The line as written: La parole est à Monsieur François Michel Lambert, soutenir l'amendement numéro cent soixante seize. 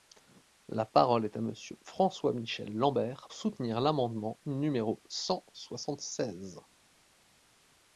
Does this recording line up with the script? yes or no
yes